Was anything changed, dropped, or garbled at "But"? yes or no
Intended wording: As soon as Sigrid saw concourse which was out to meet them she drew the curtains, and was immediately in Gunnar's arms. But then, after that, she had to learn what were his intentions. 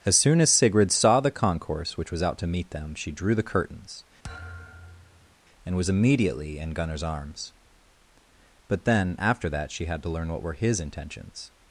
no